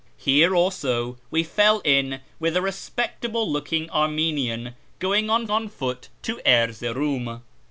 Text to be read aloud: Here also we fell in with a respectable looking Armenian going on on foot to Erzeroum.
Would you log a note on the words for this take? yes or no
no